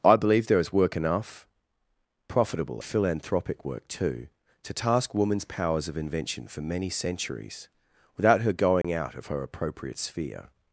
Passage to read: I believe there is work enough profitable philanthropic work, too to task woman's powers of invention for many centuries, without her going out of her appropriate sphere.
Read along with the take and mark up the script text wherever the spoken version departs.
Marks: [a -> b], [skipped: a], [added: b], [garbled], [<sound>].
I believe there is work enough profitable philanthropic work, too to task woman's powers of invention for many centuries, without her going [dropout] out of her appropriate sphere.